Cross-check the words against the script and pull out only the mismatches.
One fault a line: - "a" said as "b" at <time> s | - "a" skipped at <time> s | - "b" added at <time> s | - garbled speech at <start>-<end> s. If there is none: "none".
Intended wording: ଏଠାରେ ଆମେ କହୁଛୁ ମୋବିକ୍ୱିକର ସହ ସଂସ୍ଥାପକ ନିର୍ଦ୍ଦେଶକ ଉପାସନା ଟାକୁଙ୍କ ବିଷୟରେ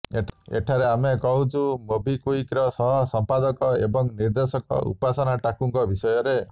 - "ଏବଂ" added at 3.8 s